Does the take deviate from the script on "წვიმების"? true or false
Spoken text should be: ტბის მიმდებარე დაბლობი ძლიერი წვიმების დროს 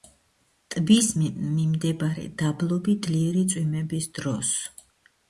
false